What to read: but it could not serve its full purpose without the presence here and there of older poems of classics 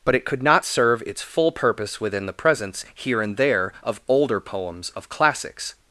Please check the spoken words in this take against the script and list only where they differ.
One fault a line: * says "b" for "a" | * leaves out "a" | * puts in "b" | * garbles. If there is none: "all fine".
* says "within" for "without"